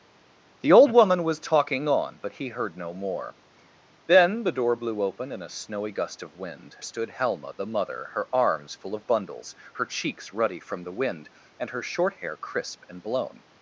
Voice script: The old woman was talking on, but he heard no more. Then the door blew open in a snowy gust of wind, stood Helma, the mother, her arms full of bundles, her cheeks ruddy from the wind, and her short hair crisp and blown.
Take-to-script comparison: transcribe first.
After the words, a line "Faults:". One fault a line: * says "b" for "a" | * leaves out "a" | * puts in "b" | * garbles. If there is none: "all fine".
The old woman was talking on, but he heard no more. Then the door blew open in a snowy gust of wind, stood Helma, the mother, her arms full of bundles, her cheeks ruddy from the wind, and her short hair crisp and blown.
Faults:
all fine